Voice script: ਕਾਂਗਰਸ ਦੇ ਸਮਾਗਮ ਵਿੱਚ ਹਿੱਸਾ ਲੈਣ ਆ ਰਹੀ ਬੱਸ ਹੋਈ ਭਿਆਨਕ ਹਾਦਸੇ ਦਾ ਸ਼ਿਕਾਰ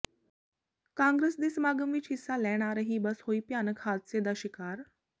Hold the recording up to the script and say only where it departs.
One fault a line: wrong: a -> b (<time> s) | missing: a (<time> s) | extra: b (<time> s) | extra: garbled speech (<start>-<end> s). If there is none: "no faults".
no faults